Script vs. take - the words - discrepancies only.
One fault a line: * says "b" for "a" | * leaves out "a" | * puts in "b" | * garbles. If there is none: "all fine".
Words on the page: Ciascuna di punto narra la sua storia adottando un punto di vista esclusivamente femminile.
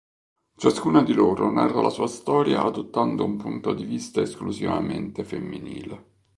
* says "loro" for "punto"